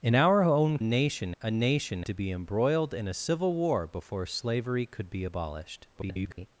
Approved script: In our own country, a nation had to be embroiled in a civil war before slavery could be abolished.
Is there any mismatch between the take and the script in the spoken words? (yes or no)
yes